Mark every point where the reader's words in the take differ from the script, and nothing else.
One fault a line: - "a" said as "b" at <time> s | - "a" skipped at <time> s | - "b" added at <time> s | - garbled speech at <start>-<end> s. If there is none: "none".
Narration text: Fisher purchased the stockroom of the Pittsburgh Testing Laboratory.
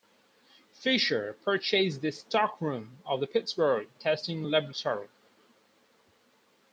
none